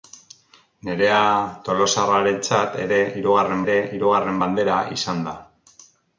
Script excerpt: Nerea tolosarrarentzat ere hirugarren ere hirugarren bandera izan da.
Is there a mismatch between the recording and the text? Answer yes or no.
no